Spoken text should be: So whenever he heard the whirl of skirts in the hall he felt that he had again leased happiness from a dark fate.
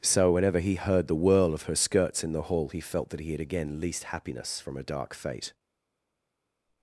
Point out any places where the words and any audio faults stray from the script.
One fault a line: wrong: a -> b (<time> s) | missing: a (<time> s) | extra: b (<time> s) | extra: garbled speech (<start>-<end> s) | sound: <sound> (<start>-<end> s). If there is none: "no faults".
extra: her (1.6 s)